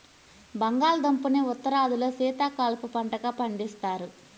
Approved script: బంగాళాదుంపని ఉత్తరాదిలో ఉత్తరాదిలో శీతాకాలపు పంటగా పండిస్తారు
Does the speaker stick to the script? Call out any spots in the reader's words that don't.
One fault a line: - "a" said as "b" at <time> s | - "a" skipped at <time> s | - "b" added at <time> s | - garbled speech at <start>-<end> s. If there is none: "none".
- "ఉత్తరాదిలో" skipped at 2.1 s